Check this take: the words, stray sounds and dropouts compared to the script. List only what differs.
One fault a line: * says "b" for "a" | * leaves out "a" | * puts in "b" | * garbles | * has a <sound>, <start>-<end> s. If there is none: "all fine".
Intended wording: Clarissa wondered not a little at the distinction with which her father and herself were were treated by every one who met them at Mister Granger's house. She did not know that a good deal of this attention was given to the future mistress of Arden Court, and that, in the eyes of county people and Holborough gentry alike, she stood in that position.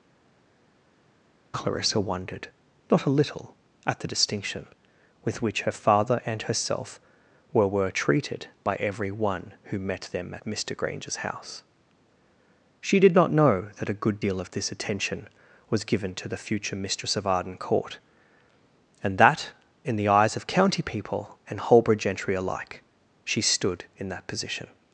all fine